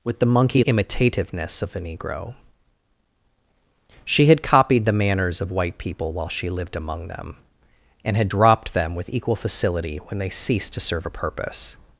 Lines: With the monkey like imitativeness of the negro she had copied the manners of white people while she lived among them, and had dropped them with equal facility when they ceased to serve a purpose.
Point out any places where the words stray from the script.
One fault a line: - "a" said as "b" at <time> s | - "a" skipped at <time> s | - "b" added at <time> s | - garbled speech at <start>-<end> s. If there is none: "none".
- "like" skipped at 0.6 s